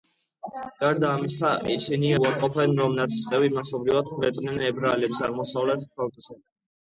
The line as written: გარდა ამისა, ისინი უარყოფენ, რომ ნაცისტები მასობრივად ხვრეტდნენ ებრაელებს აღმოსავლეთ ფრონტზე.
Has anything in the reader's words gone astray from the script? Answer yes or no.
no